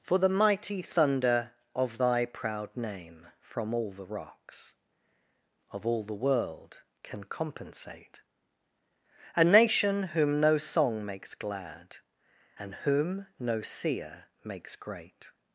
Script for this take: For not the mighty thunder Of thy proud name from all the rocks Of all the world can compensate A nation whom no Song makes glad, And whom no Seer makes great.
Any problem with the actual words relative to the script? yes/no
yes